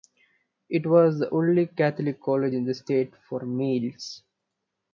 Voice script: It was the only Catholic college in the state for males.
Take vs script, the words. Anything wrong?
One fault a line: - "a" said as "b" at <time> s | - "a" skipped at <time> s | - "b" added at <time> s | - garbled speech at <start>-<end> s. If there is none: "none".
none